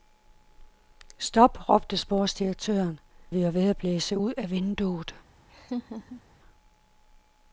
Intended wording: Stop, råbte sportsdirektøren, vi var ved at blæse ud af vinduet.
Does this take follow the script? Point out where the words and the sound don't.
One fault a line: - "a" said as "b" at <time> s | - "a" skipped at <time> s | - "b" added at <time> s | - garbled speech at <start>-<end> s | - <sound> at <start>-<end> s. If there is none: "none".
- laugh at 5.5-6.2 s